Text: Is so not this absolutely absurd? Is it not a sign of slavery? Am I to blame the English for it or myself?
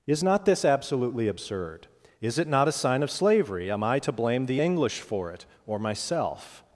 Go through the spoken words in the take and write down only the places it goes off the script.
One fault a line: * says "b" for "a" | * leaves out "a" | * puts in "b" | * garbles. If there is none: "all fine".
* leaves out "so"